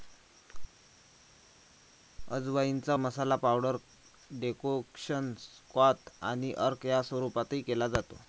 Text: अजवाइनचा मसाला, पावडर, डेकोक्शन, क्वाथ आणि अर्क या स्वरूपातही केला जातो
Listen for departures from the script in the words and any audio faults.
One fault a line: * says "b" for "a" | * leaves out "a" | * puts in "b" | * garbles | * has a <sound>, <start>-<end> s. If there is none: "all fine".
all fine